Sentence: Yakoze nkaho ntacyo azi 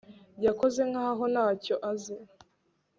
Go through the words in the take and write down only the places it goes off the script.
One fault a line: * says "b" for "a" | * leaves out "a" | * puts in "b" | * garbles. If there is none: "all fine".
all fine